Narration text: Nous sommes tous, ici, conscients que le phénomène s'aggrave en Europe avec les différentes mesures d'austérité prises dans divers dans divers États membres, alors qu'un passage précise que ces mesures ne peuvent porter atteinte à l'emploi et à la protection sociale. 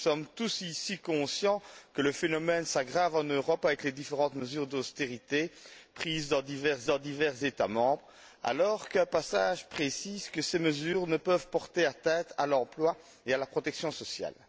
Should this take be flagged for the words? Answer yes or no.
no